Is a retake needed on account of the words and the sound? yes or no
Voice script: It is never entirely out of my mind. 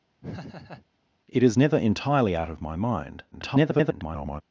yes